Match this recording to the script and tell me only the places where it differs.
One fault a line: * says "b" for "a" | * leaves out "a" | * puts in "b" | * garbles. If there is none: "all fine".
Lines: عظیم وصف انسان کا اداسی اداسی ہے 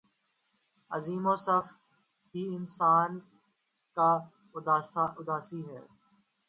* puts in "ہی"
* leaves out "اداسی"